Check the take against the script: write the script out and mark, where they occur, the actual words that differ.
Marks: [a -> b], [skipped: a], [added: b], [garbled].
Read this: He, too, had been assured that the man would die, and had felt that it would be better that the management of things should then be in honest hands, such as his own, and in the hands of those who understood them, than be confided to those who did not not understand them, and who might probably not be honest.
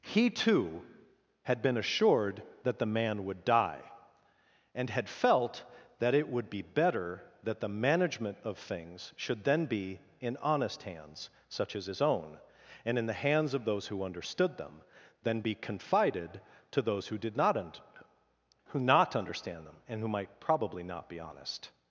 He, too, had been assured that the man would die, and had felt that it would be better that the management of things should then be in honest hands, such as his own, and in the hands of those who understood them, than be confided to those who did not [added: un who] not understand them, and who might probably not be honest.